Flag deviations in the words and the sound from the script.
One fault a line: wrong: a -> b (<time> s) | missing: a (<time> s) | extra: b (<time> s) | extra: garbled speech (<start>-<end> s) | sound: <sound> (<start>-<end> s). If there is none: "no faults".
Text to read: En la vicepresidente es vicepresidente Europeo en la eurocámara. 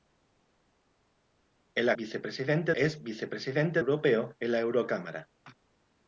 no faults